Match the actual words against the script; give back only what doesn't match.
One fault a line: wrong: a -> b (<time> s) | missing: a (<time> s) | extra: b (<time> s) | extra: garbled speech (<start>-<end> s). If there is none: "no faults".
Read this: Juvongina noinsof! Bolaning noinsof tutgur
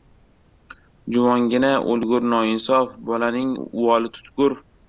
extra: o‘lgur (1.9 s)
wrong: noinsof -> uvoli (3.6 s)